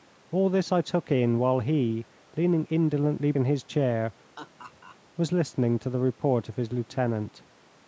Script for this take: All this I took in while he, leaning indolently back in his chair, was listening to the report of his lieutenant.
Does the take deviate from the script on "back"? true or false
true